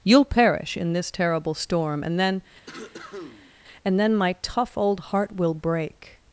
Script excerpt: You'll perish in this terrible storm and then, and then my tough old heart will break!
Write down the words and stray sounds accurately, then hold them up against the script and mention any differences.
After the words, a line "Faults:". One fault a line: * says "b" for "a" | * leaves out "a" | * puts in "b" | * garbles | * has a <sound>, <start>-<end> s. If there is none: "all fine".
You'll perish in this terrible storm and then, and then my tough old heart will break!
Faults:
* has a cough, 2.7-3.5 s